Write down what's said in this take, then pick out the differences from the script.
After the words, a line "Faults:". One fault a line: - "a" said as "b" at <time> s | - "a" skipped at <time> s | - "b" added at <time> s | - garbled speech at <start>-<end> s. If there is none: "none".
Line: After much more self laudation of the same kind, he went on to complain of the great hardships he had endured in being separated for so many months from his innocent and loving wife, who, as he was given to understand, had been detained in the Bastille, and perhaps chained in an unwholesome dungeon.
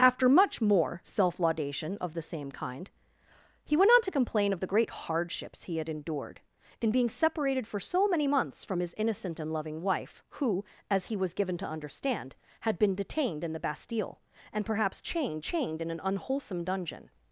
After much more self laudation of the same kind, he went on to complain of the great hardships he had endured in being separated for so many months from his innocent and loving wife, who, as he was given to understand, had been detained in the Bastille, and perhaps chained chained in an unwholesome dungeon.
Faults:
- "chained" added at 15.4 s